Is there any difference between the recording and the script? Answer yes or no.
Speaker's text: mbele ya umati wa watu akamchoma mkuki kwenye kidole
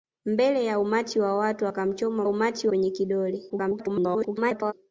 yes